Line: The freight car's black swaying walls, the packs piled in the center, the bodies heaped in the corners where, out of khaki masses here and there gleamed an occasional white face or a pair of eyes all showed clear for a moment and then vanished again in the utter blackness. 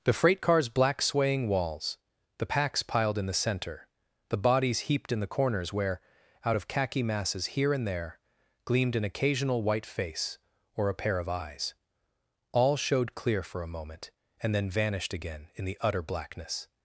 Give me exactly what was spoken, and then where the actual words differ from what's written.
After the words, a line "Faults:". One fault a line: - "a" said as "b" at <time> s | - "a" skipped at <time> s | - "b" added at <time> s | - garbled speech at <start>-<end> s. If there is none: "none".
The freight car's black swaying walls, the packs piled in the center, the bodies heaped in the corners where, out of khaki masses here and there gleamed an occasional white face or a pair of eyes all showed clear for a moment and then vanished again in the utter blackness.
Faults:
none